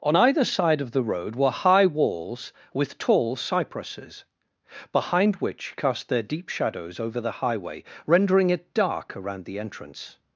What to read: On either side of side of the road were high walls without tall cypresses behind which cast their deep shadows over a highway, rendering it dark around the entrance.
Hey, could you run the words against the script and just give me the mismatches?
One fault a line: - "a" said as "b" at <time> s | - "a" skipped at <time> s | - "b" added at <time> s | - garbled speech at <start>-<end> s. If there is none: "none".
- "side of" skipped at 0.9 s
- "without" said as "with" at 2.7 s
- "a" said as "the" at 7.2 s